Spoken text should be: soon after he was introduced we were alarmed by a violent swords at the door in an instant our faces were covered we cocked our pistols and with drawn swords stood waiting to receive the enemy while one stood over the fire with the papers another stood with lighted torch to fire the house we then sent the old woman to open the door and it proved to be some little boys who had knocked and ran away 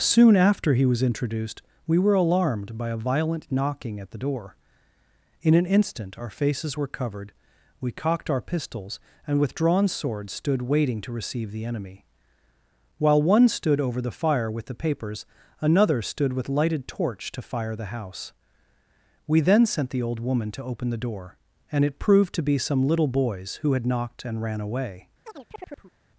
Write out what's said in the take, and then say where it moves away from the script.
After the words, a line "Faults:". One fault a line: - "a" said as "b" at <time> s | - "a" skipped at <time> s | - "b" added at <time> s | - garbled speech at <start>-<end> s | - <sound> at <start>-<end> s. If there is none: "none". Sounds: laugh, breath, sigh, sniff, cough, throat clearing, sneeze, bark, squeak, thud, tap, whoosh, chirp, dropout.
soon after he was introduced we were alarmed by a violent knocking at the door in an instant our faces were covered we cocked our pistols and with drawn swords stood waiting to receive the enemy while one stood over the fire with the papers another stood with lighted torch to fire the house we then sent the old woman to open the door and it proved to be some little boys who had knocked and ran away
Faults:
- "swords" said as "knocking" at 3.5 s
- chirp at 25.2-25.9 s